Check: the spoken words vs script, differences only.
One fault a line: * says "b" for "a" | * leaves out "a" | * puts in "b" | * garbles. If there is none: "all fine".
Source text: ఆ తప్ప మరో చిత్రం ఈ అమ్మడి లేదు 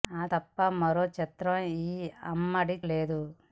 all fine